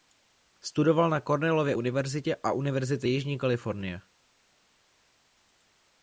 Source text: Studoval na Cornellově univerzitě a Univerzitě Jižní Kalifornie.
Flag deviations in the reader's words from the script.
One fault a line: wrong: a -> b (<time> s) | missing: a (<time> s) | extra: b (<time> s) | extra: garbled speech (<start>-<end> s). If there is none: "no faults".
no faults